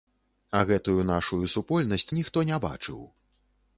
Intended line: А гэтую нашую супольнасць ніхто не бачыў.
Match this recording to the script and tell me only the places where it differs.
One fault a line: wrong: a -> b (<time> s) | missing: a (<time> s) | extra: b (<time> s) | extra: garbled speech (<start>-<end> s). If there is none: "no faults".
no faults